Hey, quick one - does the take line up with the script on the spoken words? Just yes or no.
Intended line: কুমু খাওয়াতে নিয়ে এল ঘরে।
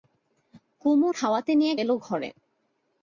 yes